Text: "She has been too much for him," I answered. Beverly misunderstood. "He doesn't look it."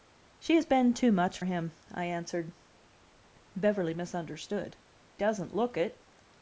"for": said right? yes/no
no